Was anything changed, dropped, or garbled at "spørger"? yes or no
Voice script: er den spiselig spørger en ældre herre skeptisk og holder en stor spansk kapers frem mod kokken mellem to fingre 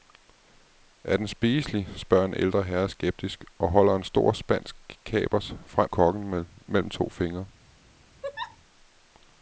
no